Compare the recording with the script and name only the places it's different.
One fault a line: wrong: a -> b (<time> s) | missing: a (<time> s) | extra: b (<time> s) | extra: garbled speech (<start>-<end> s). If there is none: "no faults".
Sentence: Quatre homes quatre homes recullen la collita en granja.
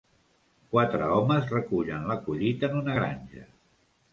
missing: quatre homes (1.5 s)
extra: una (2.8 s)